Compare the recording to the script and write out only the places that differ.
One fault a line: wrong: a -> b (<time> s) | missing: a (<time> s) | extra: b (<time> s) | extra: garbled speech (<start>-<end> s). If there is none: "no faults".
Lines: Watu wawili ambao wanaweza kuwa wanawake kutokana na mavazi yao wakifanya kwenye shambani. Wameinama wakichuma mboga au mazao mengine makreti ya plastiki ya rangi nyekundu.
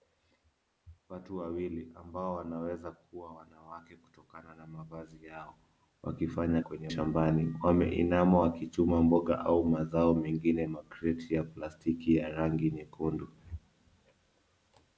no faults